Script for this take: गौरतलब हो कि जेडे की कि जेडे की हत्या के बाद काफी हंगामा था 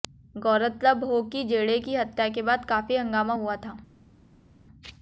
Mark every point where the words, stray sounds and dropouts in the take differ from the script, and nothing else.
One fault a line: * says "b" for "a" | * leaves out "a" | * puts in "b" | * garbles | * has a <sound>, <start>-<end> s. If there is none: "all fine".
* leaves out "कि जेडे की"
* puts in "हुआ"